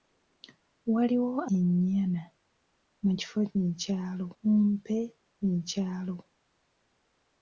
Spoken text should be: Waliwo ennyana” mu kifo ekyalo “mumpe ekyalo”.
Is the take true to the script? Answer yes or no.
yes